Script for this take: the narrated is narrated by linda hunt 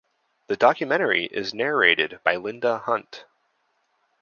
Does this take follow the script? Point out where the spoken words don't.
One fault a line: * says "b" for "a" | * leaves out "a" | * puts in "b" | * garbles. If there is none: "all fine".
* says "documentary" for "narrated"